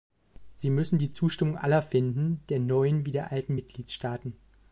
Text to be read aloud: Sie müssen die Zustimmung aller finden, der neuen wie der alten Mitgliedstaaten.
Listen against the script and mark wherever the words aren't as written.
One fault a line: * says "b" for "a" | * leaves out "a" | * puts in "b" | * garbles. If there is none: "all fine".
all fine